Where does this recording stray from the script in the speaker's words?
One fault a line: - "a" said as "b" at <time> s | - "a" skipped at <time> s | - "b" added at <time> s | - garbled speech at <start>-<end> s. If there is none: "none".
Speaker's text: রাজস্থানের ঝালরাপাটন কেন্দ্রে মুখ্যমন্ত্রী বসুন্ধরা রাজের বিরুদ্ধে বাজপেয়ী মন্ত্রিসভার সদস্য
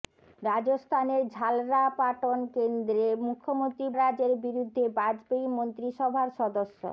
- "বসুন্ধরা" skipped at 3.9 s